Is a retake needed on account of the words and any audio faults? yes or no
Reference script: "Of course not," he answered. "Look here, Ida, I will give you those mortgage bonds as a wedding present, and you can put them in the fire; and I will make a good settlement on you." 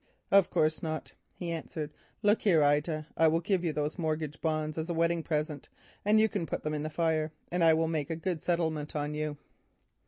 no